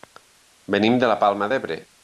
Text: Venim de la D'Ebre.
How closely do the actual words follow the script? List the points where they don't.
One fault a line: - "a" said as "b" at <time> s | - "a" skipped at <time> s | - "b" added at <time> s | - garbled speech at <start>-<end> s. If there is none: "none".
- "Palma" added at 1.2 s